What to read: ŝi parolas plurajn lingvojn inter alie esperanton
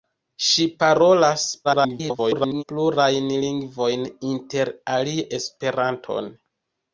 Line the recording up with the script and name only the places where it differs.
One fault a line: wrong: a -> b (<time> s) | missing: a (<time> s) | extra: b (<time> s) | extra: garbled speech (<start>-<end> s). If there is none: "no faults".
extra: garbled speech (1.6-2.6 s)